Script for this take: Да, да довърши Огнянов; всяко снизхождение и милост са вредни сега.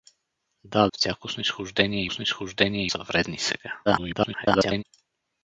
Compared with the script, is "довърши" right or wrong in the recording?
wrong